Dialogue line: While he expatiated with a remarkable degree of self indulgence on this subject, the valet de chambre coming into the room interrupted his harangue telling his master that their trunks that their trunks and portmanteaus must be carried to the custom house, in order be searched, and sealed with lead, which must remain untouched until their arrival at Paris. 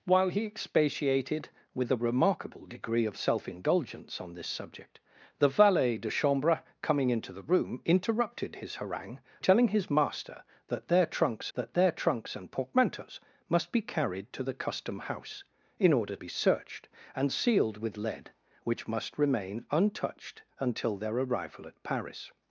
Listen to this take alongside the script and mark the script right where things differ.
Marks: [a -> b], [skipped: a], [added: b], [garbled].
While he expatiated with a remarkable degree of self indulgence on this subject, the valet de chambre coming into the room interrupted his harangue telling his master that their trunks that their trunks and portmanteaus must be carried to the custom house, in order be searched, and sealed with lead, which must remain untouched until their arrival at Paris.